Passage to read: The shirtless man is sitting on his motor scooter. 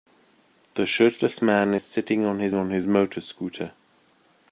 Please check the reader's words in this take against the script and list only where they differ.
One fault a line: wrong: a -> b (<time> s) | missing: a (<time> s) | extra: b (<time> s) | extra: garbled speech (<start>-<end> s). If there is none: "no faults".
extra: on his (2.5 s)